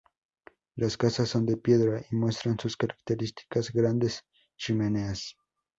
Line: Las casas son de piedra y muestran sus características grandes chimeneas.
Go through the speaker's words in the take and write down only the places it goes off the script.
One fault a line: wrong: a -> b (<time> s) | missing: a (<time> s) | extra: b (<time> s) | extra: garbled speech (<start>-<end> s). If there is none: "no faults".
no faults